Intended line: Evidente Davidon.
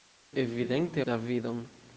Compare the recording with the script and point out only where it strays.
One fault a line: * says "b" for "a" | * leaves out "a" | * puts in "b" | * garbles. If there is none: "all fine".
all fine